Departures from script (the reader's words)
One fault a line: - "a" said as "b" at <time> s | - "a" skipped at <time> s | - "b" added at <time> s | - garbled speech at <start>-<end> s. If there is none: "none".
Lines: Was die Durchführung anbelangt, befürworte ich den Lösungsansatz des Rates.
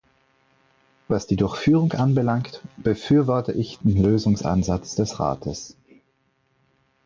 none